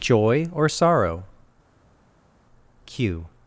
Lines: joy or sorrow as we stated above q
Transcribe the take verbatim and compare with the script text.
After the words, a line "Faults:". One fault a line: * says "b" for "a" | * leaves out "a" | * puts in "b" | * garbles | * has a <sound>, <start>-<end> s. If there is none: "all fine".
joy or sorrow q
Faults:
* leaves out "as we stated above"